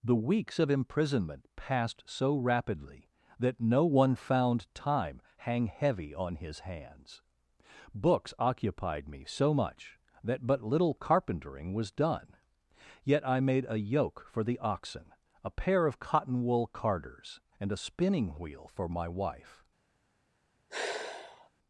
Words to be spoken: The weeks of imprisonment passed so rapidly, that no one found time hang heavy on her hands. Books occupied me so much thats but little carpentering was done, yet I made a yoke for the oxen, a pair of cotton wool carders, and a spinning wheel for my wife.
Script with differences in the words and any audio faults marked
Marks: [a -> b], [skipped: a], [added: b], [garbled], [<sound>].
The weeks of imprisonment passed so rapidly, that no one found time hang heavy on [her -> his] hands. Books occupied me so much [thats -> that] but little carpentering was done, yet I made a yoke for the oxen, a pair of cotton wool carders, and a spinning wheel for my wife. [sigh]